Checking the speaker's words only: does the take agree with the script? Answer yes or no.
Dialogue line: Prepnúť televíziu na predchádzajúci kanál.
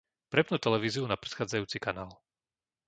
yes